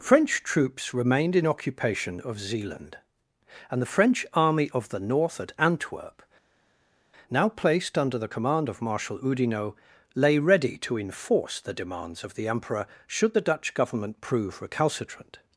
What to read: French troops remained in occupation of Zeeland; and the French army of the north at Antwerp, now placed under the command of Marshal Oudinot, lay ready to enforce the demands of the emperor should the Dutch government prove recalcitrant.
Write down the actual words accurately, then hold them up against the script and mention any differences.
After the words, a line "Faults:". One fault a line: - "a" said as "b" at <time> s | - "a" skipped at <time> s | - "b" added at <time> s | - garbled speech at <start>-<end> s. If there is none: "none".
French troops remained in occupation of Zeeland; and the French army of the north at Antwerp, now placed under the command of Marshal Oudinot, lay ready to enforce the demands of the emperor should the Dutch government prove recalcitrant.
Faults:
none